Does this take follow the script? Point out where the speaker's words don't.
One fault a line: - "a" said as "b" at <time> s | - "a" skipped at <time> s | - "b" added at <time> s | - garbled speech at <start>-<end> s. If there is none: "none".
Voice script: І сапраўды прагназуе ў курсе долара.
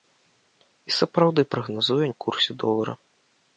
none